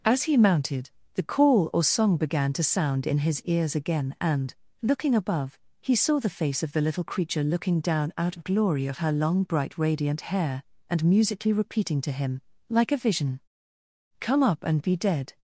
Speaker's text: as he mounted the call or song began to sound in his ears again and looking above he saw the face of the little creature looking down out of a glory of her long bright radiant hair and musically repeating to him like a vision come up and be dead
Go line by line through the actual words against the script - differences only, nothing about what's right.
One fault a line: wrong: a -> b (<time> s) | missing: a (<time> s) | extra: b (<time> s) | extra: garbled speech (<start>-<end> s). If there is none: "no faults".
missing: a (8.5 s)